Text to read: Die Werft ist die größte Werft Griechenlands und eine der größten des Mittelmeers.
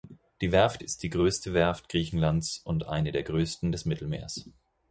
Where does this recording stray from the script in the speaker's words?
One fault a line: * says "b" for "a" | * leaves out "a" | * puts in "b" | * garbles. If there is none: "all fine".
all fine